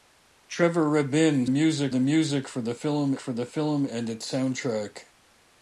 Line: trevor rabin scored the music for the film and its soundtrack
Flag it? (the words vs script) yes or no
yes